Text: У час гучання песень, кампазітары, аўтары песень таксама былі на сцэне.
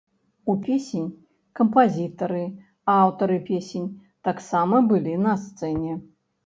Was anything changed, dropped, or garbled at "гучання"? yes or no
yes